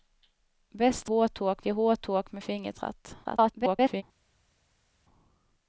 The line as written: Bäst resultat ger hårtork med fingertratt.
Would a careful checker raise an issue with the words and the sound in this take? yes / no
yes